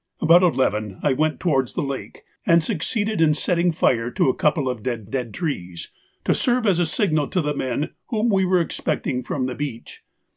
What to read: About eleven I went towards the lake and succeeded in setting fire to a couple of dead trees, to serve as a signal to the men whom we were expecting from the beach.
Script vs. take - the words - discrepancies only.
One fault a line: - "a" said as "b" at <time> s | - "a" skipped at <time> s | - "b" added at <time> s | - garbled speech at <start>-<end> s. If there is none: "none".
- "dead" added at 5.1 s